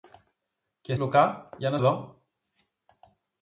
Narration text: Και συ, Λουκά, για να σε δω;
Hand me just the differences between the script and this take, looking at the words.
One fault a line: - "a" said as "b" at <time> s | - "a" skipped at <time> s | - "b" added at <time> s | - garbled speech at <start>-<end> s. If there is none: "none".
- "συ" skipped at 0.9 s
- "σε" skipped at 1.8 s